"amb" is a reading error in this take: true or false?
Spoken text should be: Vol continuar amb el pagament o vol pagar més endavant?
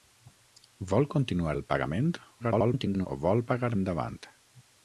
true